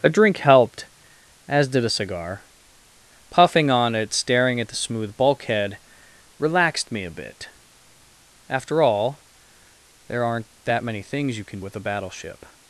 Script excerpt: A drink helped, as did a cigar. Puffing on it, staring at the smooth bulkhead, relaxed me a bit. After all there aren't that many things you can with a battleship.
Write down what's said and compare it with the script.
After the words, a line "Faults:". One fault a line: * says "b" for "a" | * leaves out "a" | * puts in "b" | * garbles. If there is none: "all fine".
A drink helped, as did a cigar. Puffing on it, staring at the smooth bulkhead, relaxed me a bit. After all there aren't that many things you can with a battleship.
Faults:
all fine